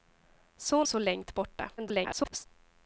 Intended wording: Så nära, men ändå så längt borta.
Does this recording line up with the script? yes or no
no